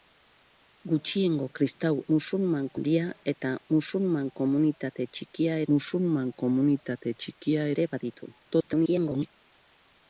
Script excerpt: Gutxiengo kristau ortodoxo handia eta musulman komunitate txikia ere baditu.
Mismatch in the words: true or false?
true